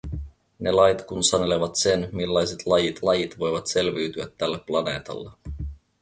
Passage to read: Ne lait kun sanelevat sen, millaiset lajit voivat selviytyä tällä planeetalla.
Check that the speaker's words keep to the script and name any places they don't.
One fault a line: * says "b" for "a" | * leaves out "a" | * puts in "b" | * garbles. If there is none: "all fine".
* puts in "lajit"